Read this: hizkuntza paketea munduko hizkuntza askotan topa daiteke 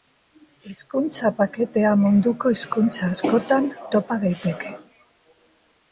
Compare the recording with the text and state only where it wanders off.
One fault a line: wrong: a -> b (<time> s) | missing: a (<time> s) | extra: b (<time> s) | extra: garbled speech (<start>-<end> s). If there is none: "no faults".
no faults